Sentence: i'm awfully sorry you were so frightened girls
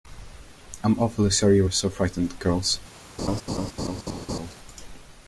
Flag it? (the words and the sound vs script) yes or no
yes